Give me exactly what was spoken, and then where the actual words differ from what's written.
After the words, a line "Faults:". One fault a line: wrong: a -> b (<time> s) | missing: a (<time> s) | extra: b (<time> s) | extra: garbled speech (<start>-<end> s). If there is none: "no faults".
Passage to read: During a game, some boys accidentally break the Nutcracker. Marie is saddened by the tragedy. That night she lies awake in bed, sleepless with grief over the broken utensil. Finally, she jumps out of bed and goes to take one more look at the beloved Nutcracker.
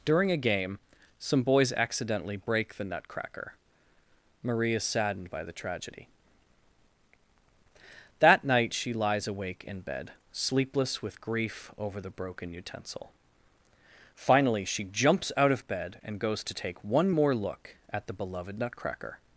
During a game, some boys accidentally break the Nutcracker. Marie is saddened by the tragedy. That night she lies awake in bed, sleepless with grief over the broken utensil. Finally, she jumps out of bed and goes to take one more look at the beloved Nutcracker.
Faults:
no faults